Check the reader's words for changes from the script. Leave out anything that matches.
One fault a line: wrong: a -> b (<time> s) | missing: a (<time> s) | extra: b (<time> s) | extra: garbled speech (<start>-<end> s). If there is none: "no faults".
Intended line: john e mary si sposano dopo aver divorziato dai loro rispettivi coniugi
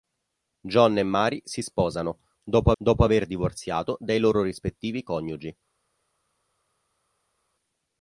extra: dopo (2.8 s)